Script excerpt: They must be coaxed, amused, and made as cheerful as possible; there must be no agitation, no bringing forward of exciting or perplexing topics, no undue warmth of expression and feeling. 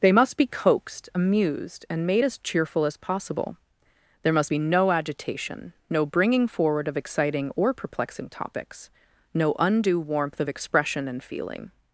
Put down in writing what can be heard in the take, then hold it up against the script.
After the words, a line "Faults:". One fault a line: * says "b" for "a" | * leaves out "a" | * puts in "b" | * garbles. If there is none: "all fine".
They must be coaxed, amused, and made as cheerful as possible; there must be no agitation, no bringing forward of exciting or perplexing topics, no undue warmth of expression and feeling.
Faults:
all fine